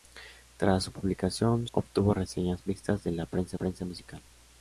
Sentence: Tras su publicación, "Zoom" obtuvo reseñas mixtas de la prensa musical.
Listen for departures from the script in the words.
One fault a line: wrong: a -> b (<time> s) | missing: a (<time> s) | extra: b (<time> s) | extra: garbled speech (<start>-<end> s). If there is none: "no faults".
missing: Zoom (1.7 s)
extra: prensa (3.5 s)